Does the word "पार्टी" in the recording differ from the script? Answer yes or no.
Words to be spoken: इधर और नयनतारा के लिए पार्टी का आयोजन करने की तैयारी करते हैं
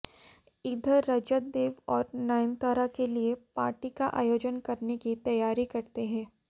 no